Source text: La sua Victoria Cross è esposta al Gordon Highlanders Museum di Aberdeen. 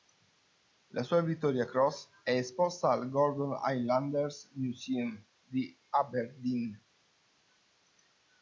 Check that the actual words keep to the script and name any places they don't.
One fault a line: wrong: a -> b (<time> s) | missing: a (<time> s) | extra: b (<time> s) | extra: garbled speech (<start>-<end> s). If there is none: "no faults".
no faults